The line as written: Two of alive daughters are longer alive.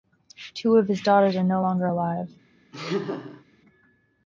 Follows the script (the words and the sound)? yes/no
no